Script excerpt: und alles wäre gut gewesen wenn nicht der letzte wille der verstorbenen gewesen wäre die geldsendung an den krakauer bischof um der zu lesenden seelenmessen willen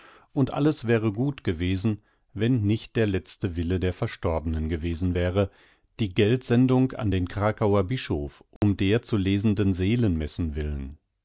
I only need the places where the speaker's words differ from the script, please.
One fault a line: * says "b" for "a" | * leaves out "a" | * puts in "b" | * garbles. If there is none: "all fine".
all fine